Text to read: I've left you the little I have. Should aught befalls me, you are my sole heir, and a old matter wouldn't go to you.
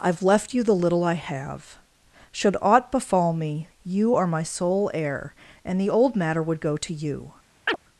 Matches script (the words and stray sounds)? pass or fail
fail